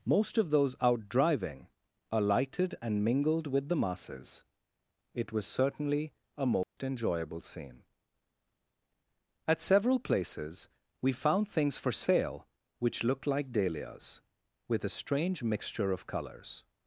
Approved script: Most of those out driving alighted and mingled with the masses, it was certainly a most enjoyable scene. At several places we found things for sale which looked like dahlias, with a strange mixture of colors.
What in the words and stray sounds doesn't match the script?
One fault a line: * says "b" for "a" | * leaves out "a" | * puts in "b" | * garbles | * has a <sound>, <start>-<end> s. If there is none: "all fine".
* has a dropout, 6.6-6.8 s